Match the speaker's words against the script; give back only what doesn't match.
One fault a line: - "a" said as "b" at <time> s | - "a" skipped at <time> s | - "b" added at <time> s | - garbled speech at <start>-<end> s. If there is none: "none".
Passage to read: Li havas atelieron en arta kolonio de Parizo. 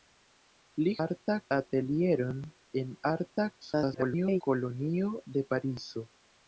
- "havas" said as "arta" at 1.0 s
- garbled speech at 3.6-4.4 s